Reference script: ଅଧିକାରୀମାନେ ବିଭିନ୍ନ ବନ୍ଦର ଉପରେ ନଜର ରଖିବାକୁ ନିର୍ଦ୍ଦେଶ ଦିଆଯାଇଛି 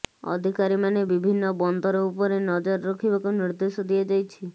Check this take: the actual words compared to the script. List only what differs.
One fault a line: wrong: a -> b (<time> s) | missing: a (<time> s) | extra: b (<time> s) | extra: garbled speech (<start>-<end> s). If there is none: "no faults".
no faults